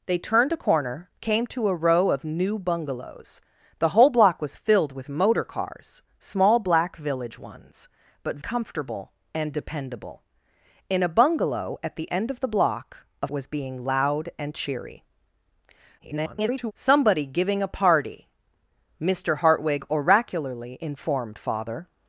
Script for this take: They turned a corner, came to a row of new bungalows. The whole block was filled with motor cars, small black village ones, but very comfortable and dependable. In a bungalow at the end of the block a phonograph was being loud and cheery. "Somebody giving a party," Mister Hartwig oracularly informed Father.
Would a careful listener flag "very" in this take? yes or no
yes